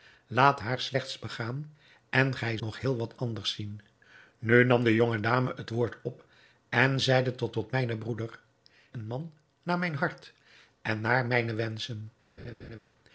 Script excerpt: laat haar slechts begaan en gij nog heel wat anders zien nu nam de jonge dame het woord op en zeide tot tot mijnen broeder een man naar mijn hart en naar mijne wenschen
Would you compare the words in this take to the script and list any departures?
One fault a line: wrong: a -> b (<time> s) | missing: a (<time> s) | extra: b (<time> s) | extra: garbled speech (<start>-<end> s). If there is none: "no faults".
no faults